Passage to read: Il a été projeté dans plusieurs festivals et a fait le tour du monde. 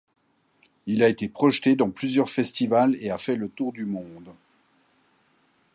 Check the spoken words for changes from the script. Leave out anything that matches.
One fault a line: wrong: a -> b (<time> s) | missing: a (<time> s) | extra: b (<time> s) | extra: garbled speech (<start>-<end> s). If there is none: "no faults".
no faults